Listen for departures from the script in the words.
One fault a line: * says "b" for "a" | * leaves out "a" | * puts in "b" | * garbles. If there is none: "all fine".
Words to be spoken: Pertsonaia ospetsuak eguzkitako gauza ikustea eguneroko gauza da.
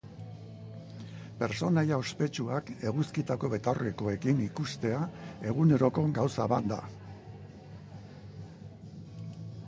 * says "betaurrekoekin" for "gauza"
* puts in "bat"